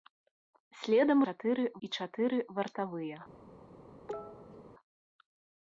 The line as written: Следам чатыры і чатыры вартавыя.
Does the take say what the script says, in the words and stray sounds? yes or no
no